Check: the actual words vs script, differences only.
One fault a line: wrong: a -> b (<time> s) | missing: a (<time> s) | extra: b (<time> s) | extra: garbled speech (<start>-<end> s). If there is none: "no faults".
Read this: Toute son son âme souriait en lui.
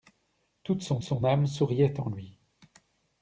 no faults